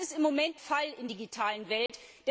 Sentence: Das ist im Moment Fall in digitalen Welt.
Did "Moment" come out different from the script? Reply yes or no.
no